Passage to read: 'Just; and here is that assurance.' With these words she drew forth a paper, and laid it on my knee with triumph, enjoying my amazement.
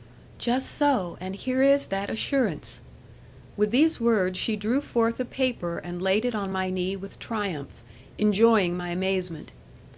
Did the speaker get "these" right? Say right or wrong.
right